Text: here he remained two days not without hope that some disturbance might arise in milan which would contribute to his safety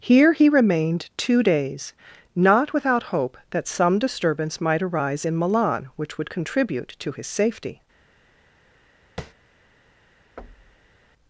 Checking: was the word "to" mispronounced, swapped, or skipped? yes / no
no